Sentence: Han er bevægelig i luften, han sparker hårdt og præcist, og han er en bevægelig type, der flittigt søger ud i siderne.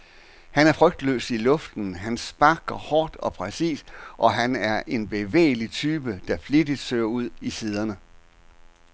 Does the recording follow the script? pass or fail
fail